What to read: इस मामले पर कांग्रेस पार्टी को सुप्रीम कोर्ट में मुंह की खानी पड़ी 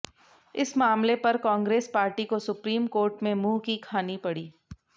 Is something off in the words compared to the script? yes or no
no